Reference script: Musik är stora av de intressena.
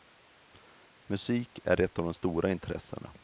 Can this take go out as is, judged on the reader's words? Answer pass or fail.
fail